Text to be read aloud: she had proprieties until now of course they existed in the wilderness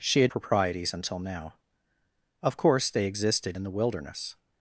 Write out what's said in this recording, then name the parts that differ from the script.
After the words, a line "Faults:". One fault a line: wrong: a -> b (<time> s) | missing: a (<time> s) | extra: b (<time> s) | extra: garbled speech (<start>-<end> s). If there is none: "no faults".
she had proprieties until now of course they existed in the wilderness
Faults:
no faults